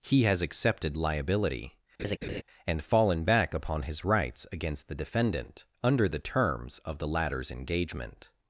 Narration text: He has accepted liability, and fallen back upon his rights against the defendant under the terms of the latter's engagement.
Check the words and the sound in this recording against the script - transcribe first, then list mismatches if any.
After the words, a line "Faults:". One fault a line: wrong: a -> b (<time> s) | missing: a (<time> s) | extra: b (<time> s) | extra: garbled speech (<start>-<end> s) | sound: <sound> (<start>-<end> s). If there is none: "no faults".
He has accepted liability, and fallen back upon his rights against the defendant under the terms of the latter's engagement.
Faults:
sound: laugh (2.0-2.4 s)